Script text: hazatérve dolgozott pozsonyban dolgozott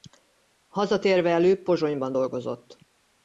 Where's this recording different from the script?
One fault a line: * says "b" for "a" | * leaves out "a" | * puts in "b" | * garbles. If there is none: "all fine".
* says "előbb" for "dolgozott"